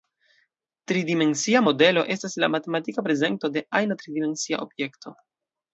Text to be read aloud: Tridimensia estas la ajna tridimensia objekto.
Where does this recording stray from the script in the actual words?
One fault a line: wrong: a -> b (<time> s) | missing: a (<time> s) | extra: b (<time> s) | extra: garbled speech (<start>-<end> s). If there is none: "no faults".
extra: modelo (1.6 s)
extra: matematika prezento de (2.6 s)